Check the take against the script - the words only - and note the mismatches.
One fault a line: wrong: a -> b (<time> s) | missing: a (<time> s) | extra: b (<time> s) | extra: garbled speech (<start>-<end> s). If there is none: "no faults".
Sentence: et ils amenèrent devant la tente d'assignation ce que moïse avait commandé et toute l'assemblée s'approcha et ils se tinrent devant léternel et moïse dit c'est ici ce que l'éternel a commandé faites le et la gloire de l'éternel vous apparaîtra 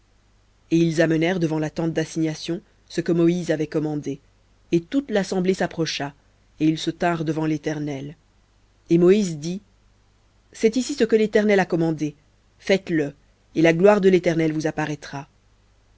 no faults